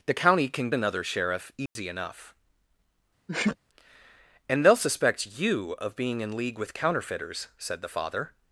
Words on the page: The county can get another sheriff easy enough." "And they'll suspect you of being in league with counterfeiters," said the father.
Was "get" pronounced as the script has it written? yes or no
no